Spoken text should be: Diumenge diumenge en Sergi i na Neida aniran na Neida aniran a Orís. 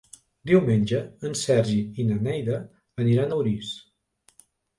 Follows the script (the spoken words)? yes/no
no